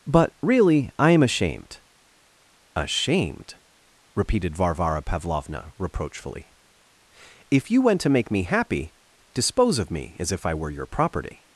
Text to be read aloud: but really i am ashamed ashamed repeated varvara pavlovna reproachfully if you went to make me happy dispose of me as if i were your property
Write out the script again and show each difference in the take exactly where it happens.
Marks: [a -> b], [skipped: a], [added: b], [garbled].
but really i am ashamed ashamed repeated varvara pavlovna reproachfully if you went to make me happy dispose of me as if i were your property